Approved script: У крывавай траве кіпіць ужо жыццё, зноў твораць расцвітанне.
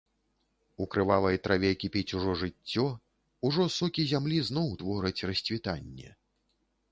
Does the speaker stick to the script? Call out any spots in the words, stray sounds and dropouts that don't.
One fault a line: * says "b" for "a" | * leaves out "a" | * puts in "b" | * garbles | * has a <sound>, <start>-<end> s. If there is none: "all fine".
* puts in "ужо сокі зямлі"